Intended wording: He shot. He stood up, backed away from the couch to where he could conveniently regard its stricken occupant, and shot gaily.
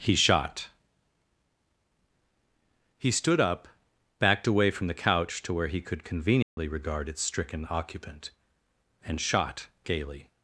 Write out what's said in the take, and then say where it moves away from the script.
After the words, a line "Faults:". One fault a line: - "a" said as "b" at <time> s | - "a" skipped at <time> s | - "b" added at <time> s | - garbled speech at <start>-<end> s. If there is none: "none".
He shot. He stood up, backed away from the couch to where he could conveniently regard its stricken occupant, and shot gaily.
Faults:
none